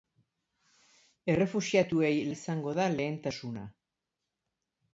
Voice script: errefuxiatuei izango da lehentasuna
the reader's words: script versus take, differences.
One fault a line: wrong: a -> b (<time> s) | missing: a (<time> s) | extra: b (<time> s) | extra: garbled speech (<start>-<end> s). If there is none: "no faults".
no faults